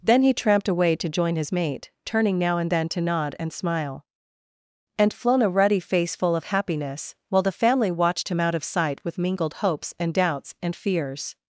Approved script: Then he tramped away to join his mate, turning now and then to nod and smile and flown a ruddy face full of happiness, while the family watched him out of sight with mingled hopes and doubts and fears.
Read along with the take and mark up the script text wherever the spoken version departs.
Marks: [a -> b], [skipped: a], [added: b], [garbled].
Then he tramped away to join his mate, turning now and then to nod and smile and flown a ruddy face full of happiness, while the family watched him out of sight with mingled hopes and doubts and fears.